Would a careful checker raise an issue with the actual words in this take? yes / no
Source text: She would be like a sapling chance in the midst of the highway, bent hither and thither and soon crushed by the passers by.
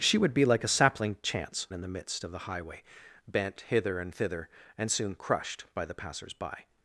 no